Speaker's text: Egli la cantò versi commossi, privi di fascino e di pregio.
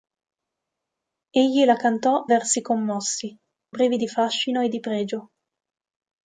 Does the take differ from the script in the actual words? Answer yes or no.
no